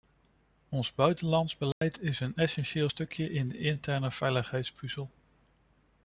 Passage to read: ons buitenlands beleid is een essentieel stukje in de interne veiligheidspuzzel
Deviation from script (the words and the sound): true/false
true